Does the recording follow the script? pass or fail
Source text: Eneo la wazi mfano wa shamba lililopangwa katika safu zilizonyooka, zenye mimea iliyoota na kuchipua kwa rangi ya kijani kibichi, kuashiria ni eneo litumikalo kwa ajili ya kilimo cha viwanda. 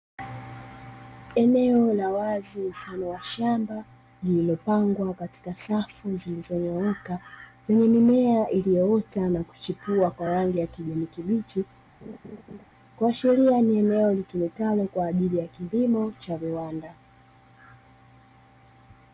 pass